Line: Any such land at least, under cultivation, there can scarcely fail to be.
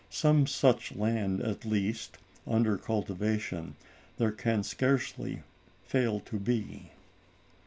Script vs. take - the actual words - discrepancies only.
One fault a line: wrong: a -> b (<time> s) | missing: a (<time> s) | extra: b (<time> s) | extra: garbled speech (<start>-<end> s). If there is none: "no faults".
wrong: Any -> Some (0.1 s)